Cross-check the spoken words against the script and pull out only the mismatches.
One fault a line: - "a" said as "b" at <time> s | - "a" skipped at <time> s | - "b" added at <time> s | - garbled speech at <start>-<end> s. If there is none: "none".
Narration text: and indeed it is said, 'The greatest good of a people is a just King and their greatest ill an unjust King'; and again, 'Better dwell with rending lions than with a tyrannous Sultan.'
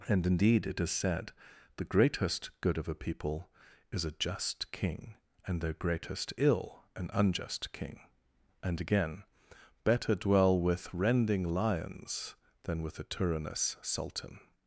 none